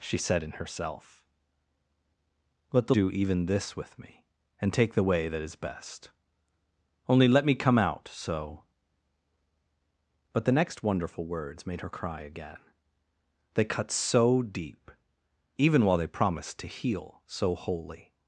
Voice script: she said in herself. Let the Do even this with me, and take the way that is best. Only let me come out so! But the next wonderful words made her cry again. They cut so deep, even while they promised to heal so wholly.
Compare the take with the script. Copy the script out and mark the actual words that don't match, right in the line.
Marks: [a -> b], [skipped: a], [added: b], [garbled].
she said in herself. Let the Do even this with me, and take the way that is best. Only let me come out so! But the next wonderful words made her cry again. They cut so deep, even while they promised to heal so wholly.